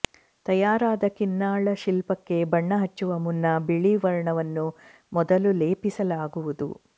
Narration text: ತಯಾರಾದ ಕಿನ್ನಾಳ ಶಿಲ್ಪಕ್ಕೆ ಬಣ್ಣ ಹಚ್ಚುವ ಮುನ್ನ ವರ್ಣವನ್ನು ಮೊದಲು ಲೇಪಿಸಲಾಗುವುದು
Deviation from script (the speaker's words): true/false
true